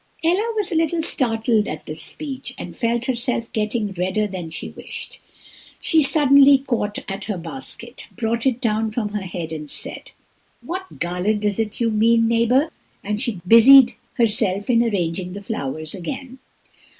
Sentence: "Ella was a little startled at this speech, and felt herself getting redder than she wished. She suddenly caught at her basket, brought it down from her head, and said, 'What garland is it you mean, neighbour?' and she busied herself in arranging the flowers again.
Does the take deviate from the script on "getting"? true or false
false